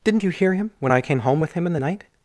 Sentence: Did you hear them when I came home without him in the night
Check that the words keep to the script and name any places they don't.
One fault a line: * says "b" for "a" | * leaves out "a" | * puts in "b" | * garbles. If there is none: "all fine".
* says "Didn't" for "Did"
* says "him" for "them"
* says "with" for "without"